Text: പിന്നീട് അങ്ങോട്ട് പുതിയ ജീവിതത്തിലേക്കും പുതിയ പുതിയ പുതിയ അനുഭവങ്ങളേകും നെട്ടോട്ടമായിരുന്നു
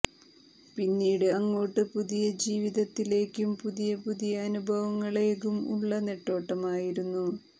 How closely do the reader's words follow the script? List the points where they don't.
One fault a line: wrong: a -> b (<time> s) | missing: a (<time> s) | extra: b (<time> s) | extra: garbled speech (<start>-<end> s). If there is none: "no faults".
wrong: പുതിയ അനുഭവങ്ങളേകും -> അനുഭവങ്ങളേകും ഉള്ള (4.4 s)